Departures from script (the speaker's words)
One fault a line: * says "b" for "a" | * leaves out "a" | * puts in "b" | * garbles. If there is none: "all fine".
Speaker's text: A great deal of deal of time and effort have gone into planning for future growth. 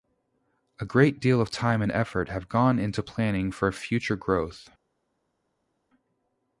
* leaves out "deal of"